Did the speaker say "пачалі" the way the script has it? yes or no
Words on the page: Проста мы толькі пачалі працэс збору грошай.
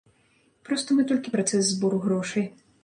no